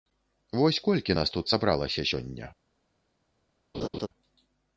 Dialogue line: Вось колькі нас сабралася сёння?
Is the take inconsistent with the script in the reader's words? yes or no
yes